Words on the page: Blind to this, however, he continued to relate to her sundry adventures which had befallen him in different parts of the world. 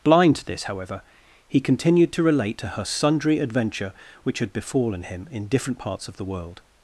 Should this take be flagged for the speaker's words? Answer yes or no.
yes